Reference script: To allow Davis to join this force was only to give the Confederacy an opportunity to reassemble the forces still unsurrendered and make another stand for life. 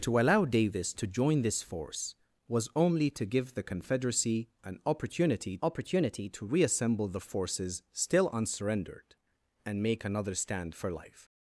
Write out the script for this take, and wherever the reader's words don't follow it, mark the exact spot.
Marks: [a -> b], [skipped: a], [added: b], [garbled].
To allow Davis to join this force was only to give the Confederacy an opportunity [added: opportunity] to reassemble the forces still unsurrendered and make another stand for life.